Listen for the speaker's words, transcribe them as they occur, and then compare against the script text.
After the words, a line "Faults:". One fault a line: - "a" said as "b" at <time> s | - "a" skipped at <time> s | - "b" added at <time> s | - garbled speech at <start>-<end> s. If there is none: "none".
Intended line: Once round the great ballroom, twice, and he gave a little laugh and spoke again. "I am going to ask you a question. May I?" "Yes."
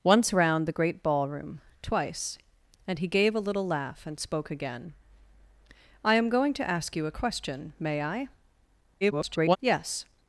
Once round the great ballroom, twice, and he gave a little laugh and spoke again. "I am going to ask you a question. May I?" [garbled] "Yes."
Faults:
- garbled speech at 9.0-9.6 s